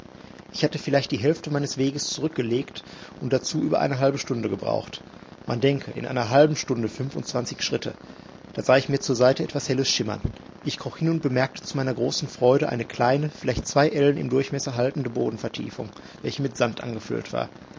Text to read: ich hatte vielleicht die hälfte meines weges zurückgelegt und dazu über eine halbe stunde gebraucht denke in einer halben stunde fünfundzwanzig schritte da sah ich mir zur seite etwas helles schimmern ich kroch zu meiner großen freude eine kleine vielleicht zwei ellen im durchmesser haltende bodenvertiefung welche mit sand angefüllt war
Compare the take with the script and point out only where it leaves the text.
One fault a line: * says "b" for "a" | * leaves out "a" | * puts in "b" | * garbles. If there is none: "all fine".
* puts in "man"
* puts in "hin und bemerkte"